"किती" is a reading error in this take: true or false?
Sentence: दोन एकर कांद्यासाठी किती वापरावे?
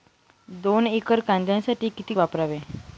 false